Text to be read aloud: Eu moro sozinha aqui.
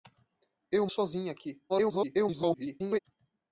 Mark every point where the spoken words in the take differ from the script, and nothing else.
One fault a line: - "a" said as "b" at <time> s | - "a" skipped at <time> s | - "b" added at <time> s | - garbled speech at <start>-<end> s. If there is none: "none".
- "moro" skipped at 0.9 s
- garbled speech at 1.7-3.0 s